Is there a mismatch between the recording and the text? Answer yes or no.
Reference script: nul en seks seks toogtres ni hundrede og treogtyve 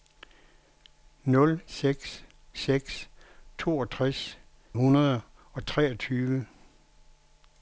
yes